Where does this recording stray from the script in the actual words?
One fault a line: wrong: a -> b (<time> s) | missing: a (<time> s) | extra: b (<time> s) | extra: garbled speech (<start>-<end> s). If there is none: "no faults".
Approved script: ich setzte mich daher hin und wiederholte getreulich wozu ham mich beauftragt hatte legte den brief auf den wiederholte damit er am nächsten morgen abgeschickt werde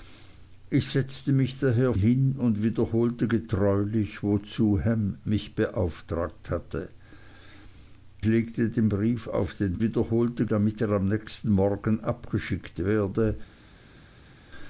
no faults